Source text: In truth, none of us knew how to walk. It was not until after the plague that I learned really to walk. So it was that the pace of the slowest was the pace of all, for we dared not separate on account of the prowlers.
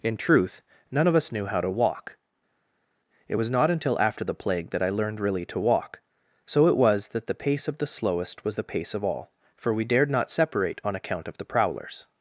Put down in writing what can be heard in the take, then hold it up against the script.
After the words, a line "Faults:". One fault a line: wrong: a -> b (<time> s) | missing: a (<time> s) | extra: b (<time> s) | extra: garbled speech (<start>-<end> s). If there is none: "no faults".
In truth, none of us knew how to walk. It was not until after the plague that I learned really to walk. So it was that the pace of the slowest was the pace of all, for we dared not separate on account of the prowlers.
Faults:
no faults